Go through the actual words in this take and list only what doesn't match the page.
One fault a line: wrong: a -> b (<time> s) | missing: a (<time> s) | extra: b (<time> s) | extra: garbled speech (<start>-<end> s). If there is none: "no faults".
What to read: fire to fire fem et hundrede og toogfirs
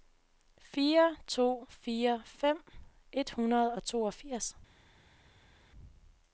no faults